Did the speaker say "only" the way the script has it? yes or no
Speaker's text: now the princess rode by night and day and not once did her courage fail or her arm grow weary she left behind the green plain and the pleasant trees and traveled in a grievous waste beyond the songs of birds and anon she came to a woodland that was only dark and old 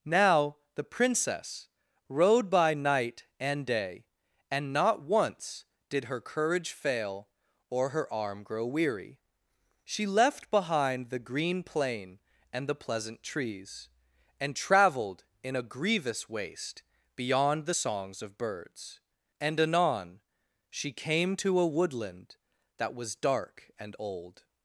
no